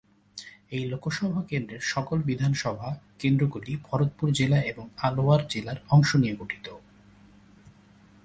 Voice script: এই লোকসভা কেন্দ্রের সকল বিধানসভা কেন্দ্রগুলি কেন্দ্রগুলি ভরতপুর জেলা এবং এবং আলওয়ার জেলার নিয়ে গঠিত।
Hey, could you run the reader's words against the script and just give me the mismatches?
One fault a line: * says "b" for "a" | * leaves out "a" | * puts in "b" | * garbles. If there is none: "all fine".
* leaves out "কেন্দ্রগুলি"
* leaves out "এবং"
* puts in "অংশ"